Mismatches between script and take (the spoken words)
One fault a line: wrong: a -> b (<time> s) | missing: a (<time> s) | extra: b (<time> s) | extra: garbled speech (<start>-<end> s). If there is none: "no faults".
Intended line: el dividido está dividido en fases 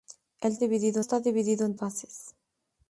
no faults